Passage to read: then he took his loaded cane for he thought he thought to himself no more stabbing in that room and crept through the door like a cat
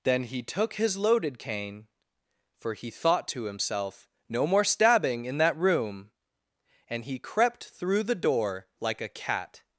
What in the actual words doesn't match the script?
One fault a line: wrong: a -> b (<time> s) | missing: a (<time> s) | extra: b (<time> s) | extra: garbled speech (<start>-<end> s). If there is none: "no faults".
missing: he thought (3.3 s)
extra: he (7.0 s)